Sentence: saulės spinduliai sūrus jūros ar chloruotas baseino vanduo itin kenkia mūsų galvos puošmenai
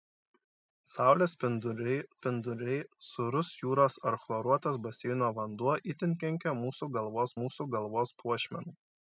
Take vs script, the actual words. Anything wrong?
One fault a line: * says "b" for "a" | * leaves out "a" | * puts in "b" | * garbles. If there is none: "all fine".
* puts in "spinduliai"
* puts in "mūsų galvos"